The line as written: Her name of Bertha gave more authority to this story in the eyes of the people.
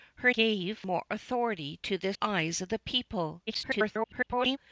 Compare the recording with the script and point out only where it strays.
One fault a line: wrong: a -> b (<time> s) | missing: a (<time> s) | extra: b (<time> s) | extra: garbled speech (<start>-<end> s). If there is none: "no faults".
missing: name of Bertha (0.3 s)
missing: story in the (2.2 s)
extra: garbled speech (3.5-4.6 s)